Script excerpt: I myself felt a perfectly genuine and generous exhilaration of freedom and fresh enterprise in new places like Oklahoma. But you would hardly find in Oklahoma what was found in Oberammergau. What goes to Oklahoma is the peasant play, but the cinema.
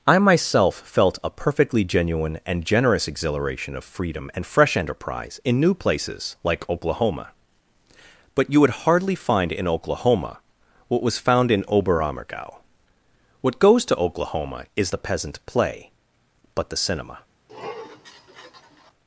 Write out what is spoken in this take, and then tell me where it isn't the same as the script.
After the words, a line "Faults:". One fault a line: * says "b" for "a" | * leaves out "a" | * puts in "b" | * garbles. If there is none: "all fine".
I myself felt a perfectly genuine and generous exhilaration of freedom and fresh enterprise in new places like Oklahoma. But you would hardly find in Oklahoma what was found in Oberammergau. What goes to Oklahoma is the peasant play, but the cinema.
Faults:
all fine